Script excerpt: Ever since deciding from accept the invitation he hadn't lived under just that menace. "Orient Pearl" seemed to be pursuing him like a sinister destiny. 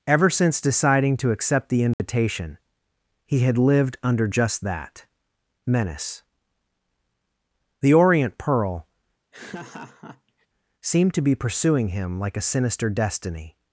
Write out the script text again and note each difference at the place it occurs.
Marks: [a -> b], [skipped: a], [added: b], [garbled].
Ever since deciding [from -> to] accept the invitation he [hadn't -> had] lived under just that menace. [added: The] "Orient Pearl" seemed to be pursuing him like a sinister destiny.